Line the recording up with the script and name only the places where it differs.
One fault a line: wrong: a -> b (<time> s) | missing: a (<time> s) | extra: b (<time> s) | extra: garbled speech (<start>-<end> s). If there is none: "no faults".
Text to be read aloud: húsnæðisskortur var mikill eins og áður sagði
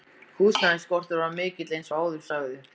no faults